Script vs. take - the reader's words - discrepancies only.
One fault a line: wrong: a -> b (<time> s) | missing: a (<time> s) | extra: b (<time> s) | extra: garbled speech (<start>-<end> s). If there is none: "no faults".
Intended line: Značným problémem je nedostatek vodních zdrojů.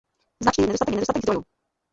wrong: problémem -> nedostatek (0.7 s)
missing: vodních (1.2 s)